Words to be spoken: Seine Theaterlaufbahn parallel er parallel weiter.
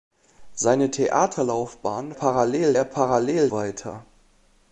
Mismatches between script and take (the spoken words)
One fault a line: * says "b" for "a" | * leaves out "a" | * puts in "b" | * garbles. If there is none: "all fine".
all fine